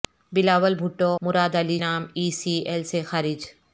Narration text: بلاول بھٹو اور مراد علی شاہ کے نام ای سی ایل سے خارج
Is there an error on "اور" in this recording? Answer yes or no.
yes